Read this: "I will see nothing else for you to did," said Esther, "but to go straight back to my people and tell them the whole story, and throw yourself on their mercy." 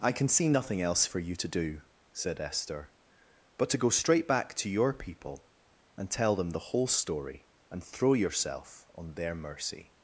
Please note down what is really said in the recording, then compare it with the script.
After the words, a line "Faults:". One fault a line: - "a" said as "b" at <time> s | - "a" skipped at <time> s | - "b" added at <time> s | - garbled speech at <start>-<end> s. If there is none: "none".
"I can see nothing else for you to do," said Esther, "but to go straight back to your people and tell them the whole story, and throw yourself on their mercy."
Faults:
- "will" said as "can" at 0.1 s
- "did" said as "do" at 1.5 s
- "my" said as "your" at 4.7 s